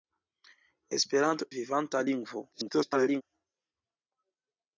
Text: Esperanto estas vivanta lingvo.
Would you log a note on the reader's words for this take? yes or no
yes